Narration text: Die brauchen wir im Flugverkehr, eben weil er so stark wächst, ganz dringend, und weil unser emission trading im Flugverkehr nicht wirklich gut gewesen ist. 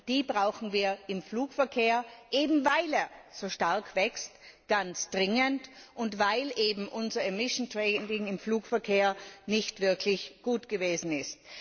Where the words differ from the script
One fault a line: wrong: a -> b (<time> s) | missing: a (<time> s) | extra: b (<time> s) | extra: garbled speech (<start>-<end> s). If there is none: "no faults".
no faults